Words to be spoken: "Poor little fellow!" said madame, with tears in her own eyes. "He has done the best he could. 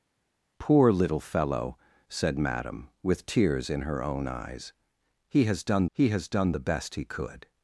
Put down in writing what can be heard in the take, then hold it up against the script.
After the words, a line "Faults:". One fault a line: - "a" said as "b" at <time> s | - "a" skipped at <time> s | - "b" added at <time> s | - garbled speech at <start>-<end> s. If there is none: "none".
"Poor little fellow!" said madame, with tears in her own eyes. "He has done he has done the best he could.
Faults:
- "he has done" added at 5.9 s